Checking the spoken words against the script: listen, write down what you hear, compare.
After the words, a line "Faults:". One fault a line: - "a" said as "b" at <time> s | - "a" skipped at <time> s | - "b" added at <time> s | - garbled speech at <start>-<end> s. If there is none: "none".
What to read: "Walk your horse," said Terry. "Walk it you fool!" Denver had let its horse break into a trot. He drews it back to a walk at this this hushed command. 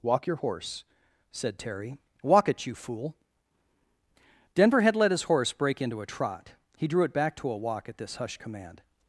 "Walk your horse," said Terry. "Walk it you fool!" Denver had let his horse break into a trot. He drew it back to a walk at this hushed command.
Faults:
- "its" said as "his" at 5.1 s
- "drews" said as "drew" at 6.9 s
- "this" skipped at 8.2 s